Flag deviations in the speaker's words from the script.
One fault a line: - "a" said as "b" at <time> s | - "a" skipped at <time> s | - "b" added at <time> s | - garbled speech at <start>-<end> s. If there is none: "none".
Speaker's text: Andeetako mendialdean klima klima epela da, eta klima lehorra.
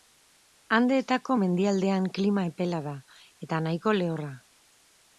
- "klima" skipped at 2.5 s
- "klima" said as "nahiko" at 3.7 s